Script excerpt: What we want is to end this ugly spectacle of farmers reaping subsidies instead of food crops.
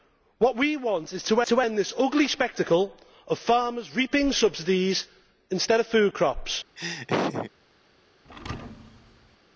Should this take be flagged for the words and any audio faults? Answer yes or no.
yes